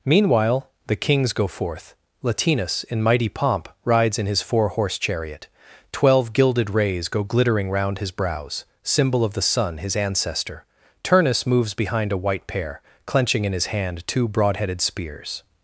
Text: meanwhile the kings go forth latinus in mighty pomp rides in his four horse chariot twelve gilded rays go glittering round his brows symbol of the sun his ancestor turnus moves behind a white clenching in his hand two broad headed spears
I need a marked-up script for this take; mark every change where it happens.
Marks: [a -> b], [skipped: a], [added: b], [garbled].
meanwhile the kings go forth latinus in mighty pomp rides in his four horse chariot twelve gilded rays go glittering round his brows symbol of the sun his ancestor turnus moves behind a white [added: pair] clenching in his hand two broad headed spears